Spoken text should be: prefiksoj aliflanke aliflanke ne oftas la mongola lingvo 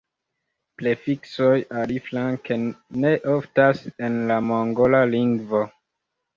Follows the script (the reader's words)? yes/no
no